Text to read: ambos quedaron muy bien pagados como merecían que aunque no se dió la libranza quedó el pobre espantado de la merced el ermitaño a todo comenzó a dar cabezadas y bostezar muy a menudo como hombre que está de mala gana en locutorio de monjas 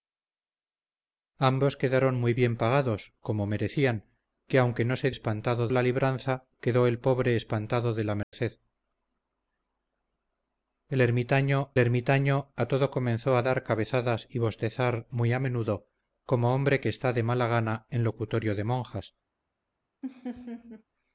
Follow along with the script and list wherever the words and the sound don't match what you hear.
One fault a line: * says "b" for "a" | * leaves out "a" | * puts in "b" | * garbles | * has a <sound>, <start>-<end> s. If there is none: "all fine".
* says "espantado" for "dió"
* has a dropout, 8.2-8.3 s
* puts in "ermitaño"
* has a laugh, 20.0-20.8 s